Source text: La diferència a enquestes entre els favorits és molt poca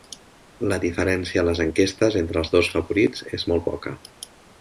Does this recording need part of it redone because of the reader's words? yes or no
yes